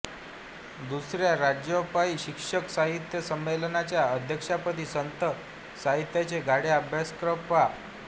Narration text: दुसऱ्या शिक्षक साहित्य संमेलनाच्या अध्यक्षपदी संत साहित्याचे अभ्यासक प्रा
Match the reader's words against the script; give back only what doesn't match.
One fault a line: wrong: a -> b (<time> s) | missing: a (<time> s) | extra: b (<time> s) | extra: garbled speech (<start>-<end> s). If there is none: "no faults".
extra: राज्यव्यापी (1.4 s)
extra: गाढे (6.4 s)